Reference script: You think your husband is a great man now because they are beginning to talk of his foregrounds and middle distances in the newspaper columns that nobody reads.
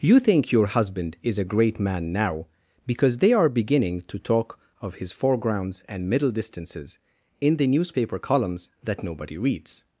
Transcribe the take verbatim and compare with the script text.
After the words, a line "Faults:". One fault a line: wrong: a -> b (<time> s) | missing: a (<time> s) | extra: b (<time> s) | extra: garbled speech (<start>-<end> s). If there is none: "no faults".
You think your husband is a great man now because they are beginning to talk of his foregrounds and middle distances in the newspaper columns that nobody reads.
Faults:
no faults